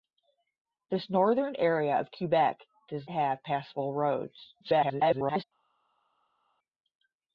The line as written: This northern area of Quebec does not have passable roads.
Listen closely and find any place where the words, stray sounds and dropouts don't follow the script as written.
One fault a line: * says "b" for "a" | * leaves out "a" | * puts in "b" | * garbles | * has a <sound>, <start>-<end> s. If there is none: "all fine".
* leaves out "not"
* garbles